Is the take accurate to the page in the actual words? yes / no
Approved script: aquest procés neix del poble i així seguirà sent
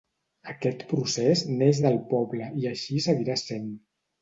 yes